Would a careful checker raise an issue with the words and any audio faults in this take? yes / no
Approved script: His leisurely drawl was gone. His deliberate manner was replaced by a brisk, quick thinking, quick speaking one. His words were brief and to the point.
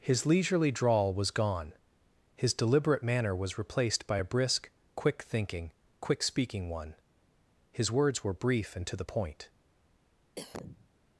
yes